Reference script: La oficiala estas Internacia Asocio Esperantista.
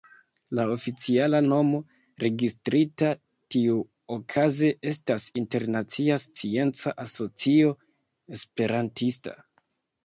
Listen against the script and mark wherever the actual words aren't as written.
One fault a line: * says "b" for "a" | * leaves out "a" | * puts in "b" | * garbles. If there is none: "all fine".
* puts in "nomo registrita tiuokaze"
* puts in "Scienca"